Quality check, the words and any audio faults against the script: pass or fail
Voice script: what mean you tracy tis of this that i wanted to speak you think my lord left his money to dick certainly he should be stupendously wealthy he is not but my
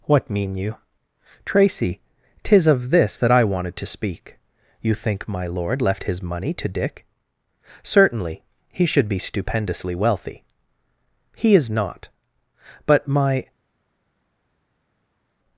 pass